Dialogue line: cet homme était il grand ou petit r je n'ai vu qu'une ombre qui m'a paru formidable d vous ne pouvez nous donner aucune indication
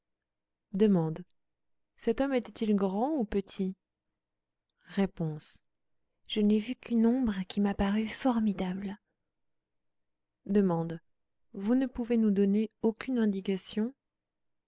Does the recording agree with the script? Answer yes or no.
yes